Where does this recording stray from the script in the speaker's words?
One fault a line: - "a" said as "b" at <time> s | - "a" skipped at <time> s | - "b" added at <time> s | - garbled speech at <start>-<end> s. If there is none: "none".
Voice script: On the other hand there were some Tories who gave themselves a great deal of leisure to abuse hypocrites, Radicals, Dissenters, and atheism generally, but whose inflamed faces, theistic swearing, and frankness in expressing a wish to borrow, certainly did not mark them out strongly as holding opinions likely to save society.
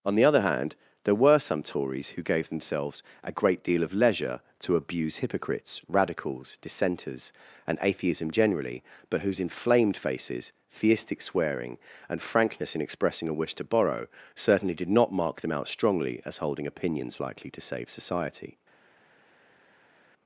none